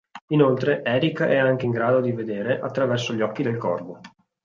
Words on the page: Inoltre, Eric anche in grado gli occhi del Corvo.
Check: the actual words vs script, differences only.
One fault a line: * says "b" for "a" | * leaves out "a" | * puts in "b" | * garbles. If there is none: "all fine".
* puts in "è"
* puts in "di vedere attraverso"